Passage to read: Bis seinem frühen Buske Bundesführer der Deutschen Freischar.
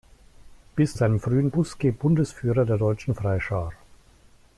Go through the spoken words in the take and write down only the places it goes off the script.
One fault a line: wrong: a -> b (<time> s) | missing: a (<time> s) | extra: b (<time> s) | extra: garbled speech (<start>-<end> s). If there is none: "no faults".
no faults